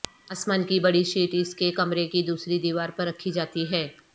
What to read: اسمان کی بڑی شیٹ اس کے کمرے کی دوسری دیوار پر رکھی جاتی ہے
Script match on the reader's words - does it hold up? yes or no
yes